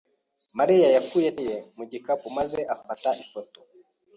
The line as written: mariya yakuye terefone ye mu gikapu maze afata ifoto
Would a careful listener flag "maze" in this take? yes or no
no